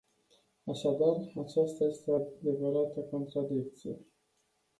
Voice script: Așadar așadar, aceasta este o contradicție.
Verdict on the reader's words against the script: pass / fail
fail